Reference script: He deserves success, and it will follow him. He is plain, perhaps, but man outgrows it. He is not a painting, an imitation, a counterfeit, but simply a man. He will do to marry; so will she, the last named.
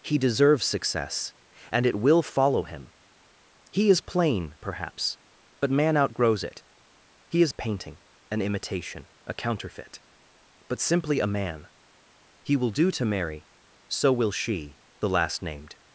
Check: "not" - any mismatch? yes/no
yes